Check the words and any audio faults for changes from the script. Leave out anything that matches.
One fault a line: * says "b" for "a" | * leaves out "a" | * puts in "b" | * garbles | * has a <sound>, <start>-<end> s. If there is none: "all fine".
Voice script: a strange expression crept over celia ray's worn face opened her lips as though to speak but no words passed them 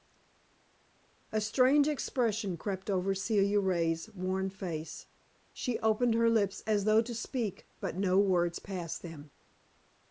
* puts in "she"